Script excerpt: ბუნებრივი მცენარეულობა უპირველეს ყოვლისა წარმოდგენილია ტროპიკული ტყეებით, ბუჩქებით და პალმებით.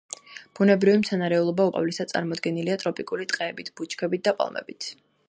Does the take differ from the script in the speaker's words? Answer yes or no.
yes